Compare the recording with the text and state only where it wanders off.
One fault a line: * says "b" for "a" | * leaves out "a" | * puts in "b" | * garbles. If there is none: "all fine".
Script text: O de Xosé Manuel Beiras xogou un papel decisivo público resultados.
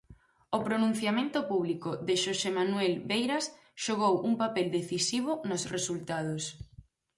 * puts in "pronunciamento público"
* says "nos" for "público"